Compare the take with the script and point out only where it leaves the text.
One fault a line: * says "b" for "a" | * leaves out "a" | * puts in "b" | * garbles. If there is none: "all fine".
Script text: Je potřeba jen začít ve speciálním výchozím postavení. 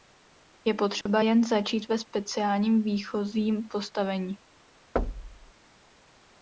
all fine